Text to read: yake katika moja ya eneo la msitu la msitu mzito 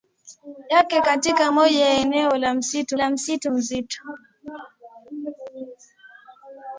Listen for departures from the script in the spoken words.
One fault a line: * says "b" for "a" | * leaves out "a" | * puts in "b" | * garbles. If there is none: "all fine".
all fine